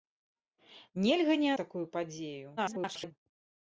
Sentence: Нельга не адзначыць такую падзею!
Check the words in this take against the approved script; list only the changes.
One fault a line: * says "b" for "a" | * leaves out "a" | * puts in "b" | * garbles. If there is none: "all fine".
* leaves out "адзначыць"
* garbles